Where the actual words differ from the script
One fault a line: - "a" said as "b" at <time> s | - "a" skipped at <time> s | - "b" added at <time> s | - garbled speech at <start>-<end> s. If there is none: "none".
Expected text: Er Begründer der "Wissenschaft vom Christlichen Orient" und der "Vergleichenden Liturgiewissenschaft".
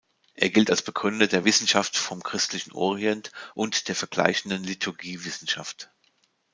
- "gilt als" added at 0.5 s